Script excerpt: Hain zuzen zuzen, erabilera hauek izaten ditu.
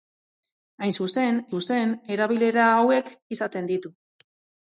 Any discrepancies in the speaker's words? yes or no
no